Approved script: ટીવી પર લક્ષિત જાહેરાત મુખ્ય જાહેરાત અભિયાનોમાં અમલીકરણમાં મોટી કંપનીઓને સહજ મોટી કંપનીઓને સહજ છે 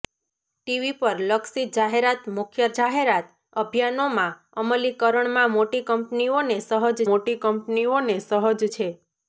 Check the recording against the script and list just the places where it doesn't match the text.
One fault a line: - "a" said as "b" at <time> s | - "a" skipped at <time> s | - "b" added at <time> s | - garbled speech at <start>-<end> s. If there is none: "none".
none